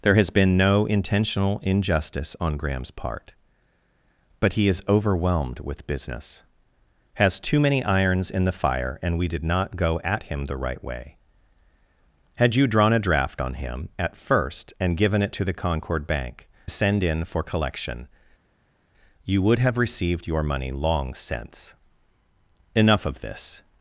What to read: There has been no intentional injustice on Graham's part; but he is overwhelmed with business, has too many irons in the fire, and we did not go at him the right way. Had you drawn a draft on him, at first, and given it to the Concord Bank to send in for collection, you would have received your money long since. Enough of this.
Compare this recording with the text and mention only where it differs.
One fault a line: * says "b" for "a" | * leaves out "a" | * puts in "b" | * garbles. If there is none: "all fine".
* leaves out "to"